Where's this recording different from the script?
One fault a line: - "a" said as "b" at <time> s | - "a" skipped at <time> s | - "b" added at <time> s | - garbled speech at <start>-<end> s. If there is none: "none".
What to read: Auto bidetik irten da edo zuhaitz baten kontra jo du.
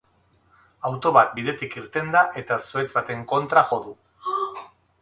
- "bat" added at 1.2 s
- "edo" said as "eta" at 2.4 s